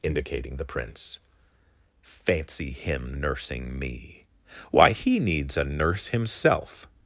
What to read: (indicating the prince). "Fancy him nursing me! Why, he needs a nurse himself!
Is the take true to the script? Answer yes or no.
yes